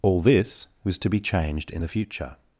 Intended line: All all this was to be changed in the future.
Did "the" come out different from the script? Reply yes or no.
no